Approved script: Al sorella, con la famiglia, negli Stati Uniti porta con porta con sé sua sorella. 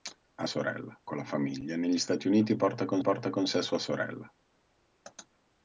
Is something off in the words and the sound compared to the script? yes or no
no